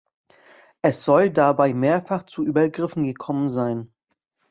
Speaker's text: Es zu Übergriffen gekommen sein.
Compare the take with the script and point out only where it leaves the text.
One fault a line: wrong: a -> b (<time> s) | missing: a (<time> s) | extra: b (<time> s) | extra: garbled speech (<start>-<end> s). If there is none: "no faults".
extra: soll dabei mehrfach (1.0 s)